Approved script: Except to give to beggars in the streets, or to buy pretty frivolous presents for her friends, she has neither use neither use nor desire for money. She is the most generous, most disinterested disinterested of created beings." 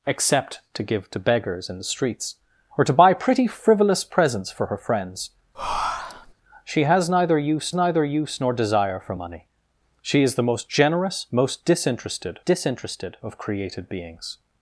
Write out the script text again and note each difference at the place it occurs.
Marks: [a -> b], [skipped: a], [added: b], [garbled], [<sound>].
Except to give to beggars in the streets, or to buy pretty frivolous presents for her friends, [breath] she has neither use neither use nor desire for money. She is the most generous, most disinterested disinterested of created beings."